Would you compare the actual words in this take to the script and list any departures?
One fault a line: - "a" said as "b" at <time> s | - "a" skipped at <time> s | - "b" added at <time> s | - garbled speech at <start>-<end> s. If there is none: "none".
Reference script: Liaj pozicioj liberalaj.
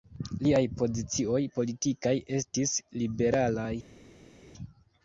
- "politikaj estis" added at 1.6 s